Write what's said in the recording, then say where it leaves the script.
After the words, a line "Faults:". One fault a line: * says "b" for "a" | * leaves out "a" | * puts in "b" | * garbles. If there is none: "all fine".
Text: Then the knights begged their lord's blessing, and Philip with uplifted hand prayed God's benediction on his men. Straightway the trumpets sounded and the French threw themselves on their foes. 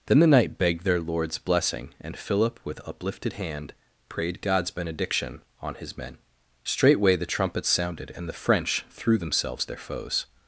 Then the knight begged their lord's blessing, and Philip with uplifted hand prayed God's benediction on his men. Straightway the trumpets sounded and the French threw themselves their foes.
Faults:
* says "knight" for "knights"
* leaves out "on"